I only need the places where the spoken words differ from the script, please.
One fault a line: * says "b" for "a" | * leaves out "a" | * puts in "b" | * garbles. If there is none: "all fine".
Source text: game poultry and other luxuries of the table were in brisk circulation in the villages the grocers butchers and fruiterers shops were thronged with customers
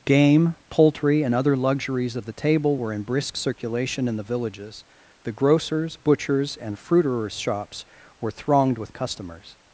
all fine